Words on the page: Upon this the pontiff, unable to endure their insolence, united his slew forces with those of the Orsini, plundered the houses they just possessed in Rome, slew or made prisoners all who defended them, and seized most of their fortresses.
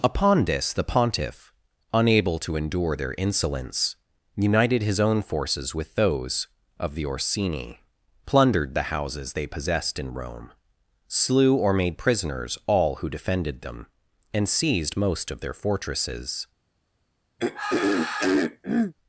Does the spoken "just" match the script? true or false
false